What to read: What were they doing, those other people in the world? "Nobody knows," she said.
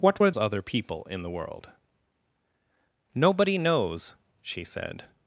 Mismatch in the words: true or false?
true